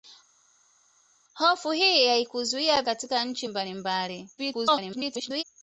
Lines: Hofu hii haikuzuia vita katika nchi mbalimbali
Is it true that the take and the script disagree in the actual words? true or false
true